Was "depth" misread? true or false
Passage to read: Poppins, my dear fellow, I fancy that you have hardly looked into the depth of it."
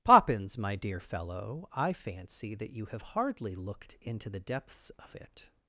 true